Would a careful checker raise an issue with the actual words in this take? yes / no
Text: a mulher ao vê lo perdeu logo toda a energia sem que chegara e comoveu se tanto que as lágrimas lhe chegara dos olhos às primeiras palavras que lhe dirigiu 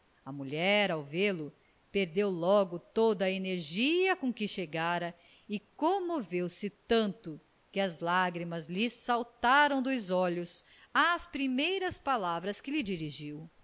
yes